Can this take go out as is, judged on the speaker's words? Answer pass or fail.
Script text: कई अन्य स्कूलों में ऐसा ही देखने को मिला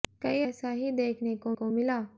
fail